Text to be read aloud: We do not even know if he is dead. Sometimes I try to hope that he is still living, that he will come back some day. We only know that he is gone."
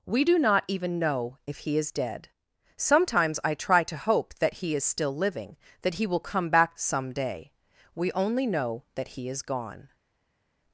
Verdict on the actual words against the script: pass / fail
pass